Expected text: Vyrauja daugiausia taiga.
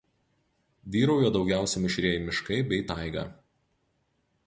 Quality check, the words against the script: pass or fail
fail